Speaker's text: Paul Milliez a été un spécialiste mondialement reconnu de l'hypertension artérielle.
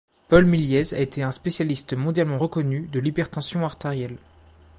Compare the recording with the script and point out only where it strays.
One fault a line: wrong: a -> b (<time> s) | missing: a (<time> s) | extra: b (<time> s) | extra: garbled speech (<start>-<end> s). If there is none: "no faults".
no faults